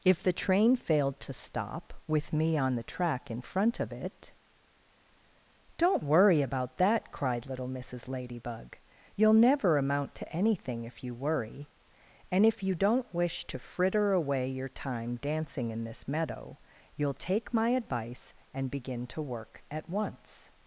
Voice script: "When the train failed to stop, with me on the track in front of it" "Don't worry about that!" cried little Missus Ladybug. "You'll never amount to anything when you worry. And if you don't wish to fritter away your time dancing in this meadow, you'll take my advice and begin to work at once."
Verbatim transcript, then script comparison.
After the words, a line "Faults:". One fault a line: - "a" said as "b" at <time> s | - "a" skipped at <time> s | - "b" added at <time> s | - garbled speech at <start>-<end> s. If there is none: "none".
"If the train failed to stop, with me on the track in front of it" "Don't worry about that!" cried little Missus Ladybug. "You'll never amount to anything if you worry. And if you don't wish to fritter away your time dancing in this meadow, you'll take my advice and begin to work at once."
Faults:
- "When" said as "If" at 0.0 s
- "when" said as "if" at 10.8 s